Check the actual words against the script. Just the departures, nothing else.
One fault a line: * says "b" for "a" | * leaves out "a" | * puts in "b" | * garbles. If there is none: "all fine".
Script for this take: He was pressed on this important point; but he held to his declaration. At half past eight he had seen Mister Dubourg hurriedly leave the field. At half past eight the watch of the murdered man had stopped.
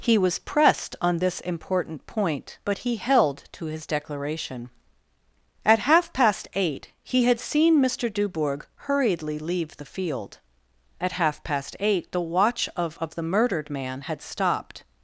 * puts in "of"